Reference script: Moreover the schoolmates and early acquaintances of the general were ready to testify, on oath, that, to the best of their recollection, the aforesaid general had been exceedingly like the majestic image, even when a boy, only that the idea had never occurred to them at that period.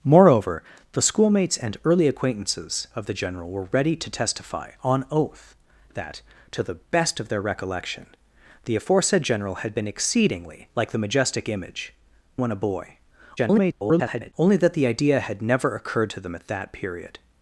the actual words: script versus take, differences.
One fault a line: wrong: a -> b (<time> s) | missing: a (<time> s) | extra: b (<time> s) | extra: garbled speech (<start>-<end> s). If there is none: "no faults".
missing: even (11.9 s)
extra: garbled speech (13.4-14.3 s)